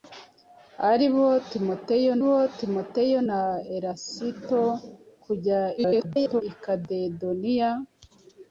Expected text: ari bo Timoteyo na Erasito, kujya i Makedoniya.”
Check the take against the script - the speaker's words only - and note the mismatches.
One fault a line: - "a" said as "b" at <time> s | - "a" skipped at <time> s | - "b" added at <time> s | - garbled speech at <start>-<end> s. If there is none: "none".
- "bo Timoteyo" added at 2.2 s
- garbled speech at 5.8-6.4 s